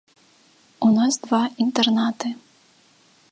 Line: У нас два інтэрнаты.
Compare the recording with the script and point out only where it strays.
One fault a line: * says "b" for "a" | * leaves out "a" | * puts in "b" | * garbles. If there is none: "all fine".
all fine